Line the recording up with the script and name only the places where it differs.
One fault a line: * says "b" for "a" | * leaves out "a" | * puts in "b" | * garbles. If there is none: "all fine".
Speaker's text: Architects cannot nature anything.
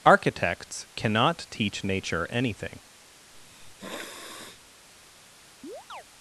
* puts in "teach"